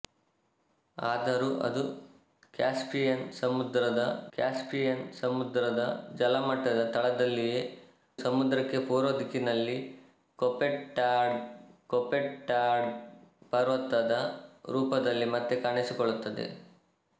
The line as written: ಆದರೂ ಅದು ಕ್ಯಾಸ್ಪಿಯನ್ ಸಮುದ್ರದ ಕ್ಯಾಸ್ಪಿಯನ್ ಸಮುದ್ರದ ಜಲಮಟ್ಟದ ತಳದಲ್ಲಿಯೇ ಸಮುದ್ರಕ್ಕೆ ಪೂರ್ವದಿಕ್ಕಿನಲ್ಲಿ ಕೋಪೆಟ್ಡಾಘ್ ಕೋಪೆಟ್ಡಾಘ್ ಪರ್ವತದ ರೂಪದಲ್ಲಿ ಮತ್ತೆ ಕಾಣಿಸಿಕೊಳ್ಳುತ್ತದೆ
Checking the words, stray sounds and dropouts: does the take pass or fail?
pass